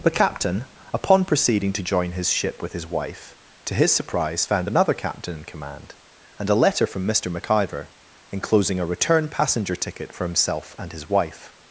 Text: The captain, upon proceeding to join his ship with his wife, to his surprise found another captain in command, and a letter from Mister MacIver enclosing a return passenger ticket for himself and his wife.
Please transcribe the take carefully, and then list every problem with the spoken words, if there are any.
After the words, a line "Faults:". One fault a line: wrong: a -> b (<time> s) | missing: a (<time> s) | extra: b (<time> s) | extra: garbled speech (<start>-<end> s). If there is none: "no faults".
The captain, upon proceeding to join his ship with his wife, to his surprise found another captain in command, and a letter from Mister MacIver enclosing a return passenger ticket for himself and his wife.
Faults:
no faults